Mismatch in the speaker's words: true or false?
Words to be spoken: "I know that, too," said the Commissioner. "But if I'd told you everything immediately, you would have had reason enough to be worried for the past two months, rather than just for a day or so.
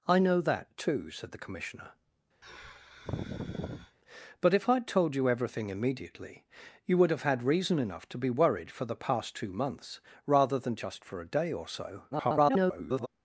true